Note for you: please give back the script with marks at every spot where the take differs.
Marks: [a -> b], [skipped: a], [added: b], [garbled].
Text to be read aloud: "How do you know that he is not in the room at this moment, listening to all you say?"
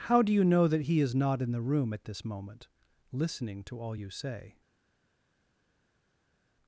"How do you know that he is not in the room at this moment, listening to all you say?"